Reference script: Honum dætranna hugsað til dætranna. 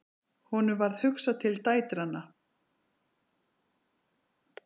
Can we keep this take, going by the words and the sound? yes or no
no